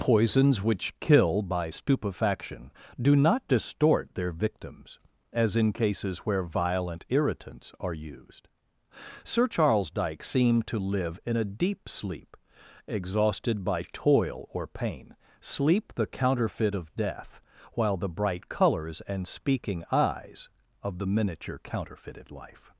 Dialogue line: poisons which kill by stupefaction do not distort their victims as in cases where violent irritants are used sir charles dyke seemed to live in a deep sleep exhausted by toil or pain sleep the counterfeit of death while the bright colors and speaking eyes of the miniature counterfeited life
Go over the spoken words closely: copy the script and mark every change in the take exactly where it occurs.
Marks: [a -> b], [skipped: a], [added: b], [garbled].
poisons which kill by stupefaction do not distort their victims as in cases where violent irritants are used sir charles dyke seemed to live in a deep sleep exhausted by toil or pain sleep the counterfeit of death while the bright colors and speaking eyes of the miniature counterfeited life